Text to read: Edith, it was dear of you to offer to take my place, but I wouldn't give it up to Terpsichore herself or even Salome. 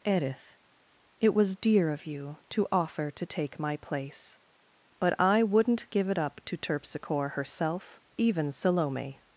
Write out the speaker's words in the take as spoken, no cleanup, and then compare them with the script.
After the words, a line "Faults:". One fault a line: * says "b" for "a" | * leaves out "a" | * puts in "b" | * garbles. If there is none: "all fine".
Edith, it was dear of you to offer to take my place, but I wouldn't give it up to Terpsichore herself even Salome.
Faults:
* leaves out "or"